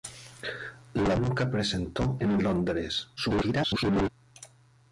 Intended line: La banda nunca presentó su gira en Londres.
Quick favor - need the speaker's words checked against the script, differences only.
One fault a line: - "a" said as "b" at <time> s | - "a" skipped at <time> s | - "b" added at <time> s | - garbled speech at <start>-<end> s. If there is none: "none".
- "banda" skipped at 1.1 s
- "su gira" skipped at 2.2 s
- garbled speech at 3.2-4.1 s